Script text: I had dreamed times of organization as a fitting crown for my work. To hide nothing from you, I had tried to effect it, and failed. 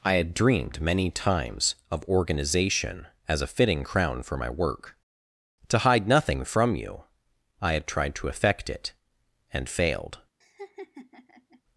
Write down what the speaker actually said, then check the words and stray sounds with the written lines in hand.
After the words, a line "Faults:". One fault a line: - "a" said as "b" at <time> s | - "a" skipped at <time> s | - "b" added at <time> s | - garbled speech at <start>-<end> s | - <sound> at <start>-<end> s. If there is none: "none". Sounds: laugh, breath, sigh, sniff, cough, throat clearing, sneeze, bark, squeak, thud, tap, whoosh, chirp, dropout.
I had dreamed many times of organization as a fitting crown for my work. To hide nothing from you, I had tried to effect it, and failed.
Faults:
- "many" added at 0.8 s
- laugh at 10.4-11.6 s